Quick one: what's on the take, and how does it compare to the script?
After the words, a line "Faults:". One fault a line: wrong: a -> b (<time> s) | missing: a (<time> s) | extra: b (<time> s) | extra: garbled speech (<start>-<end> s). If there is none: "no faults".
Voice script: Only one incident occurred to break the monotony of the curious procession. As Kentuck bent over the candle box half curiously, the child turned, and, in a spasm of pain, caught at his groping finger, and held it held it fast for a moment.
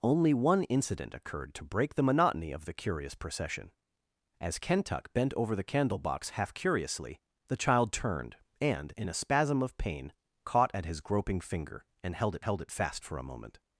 Only one incident occurred to break the monotony of the curious procession. As Kentuck bent over the candle box half curiously, the child turned, and, in a spasm of pain, caught at his groping finger, and held it held it fast for a moment.
Faults:
no faults